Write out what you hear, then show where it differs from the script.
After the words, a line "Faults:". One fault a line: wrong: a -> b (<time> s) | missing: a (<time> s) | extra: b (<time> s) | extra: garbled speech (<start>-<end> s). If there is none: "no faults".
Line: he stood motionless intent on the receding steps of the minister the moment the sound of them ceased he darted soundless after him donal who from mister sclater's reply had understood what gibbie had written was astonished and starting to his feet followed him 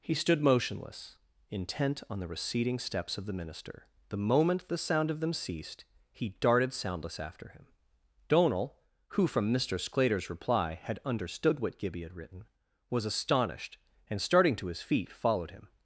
he stood motionless intent on the receding steps of the minister the moment the sound of them ceased he darted soundless after him donal who from mister sclater's reply had understood what gibbie had written was astonished and starting to his feet followed him
Faults:
no faults